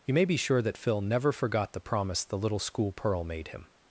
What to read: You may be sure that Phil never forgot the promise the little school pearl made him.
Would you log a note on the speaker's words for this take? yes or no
no